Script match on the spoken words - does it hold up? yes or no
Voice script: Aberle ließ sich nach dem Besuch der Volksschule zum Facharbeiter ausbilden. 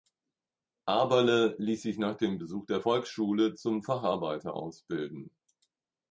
yes